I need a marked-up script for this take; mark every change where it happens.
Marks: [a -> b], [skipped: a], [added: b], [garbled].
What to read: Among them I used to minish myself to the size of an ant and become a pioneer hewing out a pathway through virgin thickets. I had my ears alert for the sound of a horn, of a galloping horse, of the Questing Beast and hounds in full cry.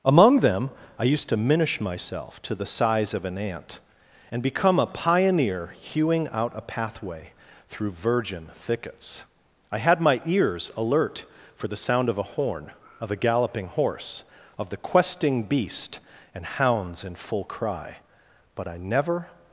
Among them I used to minish myself to the size of an ant and become a pioneer hewing out a pathway through virgin thickets. I had my ears alert for the sound of a horn, of a galloping horse, of the Questing Beast and hounds in full cry. [added: But I never]